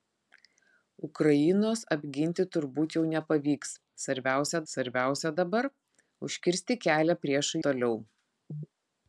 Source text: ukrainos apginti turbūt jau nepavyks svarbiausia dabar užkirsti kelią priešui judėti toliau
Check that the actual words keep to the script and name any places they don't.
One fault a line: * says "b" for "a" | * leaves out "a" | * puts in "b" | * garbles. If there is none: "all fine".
* puts in "svarbiausia"
* leaves out "judėti"